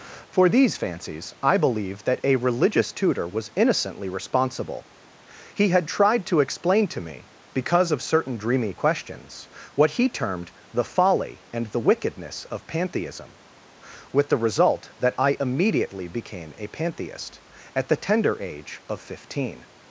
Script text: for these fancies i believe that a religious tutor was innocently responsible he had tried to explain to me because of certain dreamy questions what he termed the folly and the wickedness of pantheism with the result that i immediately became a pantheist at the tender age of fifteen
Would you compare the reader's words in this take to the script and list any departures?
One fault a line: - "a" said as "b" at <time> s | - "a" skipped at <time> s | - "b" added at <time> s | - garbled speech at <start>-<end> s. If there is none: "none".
none